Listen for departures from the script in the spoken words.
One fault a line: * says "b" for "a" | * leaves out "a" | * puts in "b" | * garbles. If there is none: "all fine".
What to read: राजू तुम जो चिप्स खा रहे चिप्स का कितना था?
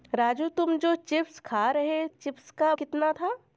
all fine